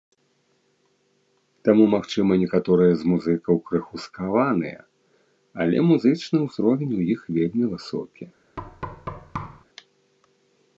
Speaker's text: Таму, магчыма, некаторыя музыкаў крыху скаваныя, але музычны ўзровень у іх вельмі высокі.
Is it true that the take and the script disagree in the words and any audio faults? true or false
true